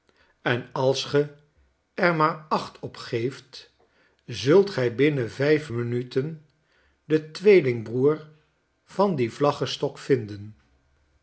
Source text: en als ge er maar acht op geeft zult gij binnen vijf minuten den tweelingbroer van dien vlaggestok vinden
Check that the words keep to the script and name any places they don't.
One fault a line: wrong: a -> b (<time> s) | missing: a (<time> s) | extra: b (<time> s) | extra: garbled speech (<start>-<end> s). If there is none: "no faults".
no faults